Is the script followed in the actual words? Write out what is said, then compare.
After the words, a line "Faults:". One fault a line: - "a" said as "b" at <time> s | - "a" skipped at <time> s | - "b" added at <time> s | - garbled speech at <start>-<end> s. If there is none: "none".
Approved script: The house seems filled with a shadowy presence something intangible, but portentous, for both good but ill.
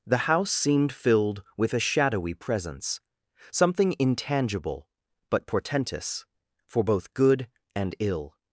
The house seemed filled with a shadowy presence something intangible, but portentous, for both good and ill.
Faults:
- "seems" said as "seemed" at 0.5 s
- "but" said as "and" at 7.7 s